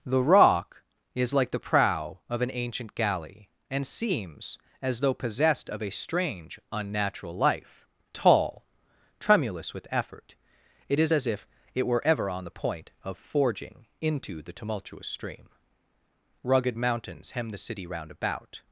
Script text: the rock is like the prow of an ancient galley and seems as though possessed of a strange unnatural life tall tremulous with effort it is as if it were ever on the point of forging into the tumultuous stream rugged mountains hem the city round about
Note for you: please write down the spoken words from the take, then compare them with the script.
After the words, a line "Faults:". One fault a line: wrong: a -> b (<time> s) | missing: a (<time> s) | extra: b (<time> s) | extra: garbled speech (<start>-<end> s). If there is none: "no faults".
the rock is like the prow of an ancient galley and seems as though possessed of a strange unnatural life tall tremulous with effort it is as if it were ever on the point of forging into the tumultuous stream rugged mountains hem the city round about
Faults:
no faults